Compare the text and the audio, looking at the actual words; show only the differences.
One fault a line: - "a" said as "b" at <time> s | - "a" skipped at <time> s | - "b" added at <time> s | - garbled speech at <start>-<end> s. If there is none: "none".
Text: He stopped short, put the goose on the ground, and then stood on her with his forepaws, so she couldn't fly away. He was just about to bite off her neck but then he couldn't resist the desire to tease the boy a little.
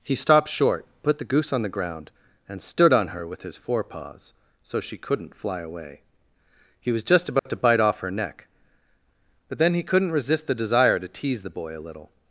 - "then" skipped at 2.6 s